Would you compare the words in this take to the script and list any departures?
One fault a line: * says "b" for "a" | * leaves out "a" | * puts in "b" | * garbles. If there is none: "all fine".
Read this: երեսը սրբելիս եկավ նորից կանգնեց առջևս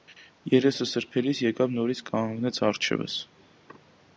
all fine